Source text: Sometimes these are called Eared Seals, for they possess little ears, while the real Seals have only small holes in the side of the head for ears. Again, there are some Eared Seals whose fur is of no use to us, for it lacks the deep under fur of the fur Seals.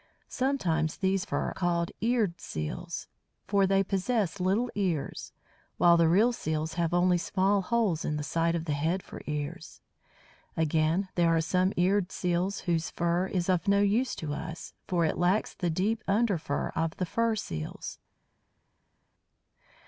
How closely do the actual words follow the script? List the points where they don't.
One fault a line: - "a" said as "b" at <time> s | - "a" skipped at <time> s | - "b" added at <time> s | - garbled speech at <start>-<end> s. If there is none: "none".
- "are" said as "fur" at 1.2 s